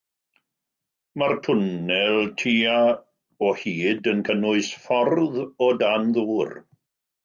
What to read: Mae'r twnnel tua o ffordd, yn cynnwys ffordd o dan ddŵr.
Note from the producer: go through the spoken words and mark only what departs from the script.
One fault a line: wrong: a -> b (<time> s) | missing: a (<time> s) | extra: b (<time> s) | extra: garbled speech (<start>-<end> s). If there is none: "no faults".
wrong: ffordd -> hyd (3.7 s)